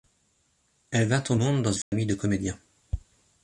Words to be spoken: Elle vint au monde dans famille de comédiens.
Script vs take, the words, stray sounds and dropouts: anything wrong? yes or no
yes